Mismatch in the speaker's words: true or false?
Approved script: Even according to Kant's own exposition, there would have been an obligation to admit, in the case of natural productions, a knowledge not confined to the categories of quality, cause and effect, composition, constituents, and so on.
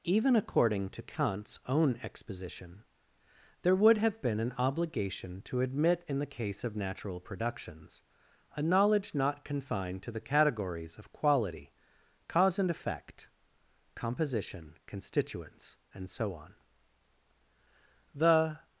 true